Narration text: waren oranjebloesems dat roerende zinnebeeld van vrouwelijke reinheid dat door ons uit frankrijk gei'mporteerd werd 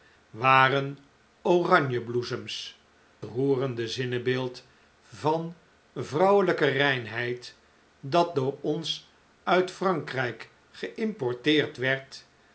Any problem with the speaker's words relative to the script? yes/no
yes